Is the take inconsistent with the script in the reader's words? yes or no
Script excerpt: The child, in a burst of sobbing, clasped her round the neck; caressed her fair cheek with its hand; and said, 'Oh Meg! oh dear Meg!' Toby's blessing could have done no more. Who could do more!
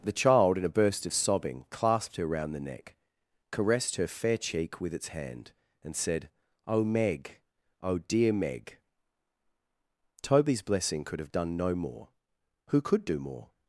no